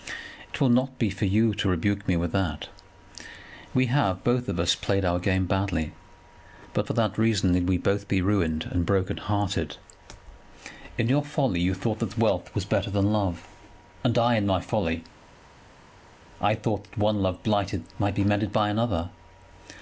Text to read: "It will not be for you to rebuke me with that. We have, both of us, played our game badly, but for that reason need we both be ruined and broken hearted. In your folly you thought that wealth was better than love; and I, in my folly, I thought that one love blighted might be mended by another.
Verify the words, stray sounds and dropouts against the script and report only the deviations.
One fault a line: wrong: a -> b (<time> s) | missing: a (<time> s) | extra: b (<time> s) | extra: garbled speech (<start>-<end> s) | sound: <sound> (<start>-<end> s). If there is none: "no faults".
no faults